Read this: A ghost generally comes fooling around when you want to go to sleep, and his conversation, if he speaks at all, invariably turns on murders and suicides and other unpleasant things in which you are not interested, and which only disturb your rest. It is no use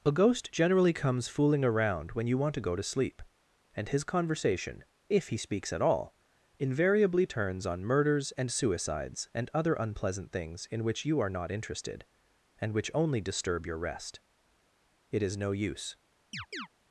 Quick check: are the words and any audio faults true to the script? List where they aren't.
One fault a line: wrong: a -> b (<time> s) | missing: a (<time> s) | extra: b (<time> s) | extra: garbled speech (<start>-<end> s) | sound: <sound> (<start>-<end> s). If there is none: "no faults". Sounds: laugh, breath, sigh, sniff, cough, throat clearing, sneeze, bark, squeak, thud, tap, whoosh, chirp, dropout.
sound: chirp (16.3-16.7 s)